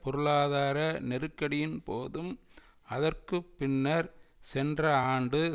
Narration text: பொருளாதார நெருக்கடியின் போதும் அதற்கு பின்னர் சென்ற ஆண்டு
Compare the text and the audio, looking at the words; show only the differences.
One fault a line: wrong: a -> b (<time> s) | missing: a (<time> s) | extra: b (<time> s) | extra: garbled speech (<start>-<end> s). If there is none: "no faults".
no faults